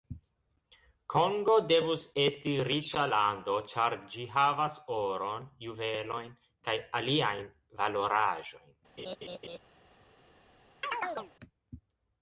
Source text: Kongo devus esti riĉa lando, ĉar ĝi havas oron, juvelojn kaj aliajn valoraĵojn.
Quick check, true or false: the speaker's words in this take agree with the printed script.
true